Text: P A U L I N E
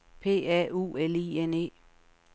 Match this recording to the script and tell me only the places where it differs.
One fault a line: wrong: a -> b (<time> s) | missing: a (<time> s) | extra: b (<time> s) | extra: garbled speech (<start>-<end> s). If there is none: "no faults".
no faults